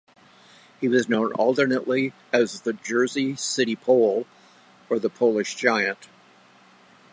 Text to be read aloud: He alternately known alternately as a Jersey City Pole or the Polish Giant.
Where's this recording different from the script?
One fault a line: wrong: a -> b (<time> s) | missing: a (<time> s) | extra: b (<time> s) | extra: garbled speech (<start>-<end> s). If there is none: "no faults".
wrong: alternately -> was (0.9 s)
wrong: a -> the (2.6 s)